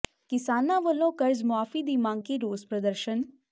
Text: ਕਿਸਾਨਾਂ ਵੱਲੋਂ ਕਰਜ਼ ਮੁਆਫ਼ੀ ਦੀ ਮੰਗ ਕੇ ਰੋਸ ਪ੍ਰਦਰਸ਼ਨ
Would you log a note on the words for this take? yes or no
no